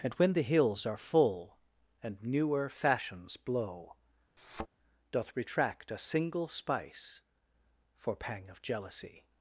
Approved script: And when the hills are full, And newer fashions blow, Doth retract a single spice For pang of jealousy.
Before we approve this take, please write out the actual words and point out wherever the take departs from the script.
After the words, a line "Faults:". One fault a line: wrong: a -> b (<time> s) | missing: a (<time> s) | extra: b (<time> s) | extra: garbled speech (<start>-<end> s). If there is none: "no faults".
And when the hills are full, And newer fashions blow, Doth retract a single spice For pang of jealousy.
Faults:
no faults